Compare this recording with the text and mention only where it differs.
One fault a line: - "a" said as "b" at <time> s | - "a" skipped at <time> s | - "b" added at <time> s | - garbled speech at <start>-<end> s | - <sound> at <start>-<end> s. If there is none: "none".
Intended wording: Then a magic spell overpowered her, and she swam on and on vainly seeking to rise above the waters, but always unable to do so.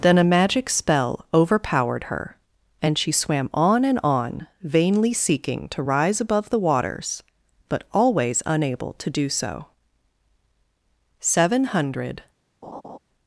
- "Seven hundred" added at 11.2 s
- laugh at 12.6-13.0 s